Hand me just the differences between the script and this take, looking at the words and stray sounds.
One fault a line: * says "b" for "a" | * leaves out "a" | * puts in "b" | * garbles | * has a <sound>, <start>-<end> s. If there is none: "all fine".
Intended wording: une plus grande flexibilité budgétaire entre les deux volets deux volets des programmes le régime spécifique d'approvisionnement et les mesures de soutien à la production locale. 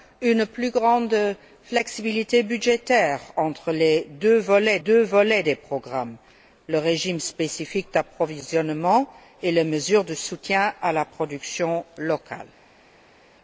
all fine